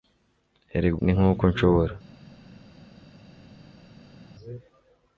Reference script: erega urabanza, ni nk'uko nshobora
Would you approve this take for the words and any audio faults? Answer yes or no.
no